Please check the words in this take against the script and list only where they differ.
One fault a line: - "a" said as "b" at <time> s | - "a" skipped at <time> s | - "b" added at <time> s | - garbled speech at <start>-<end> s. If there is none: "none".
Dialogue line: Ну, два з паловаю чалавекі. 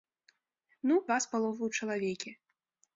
none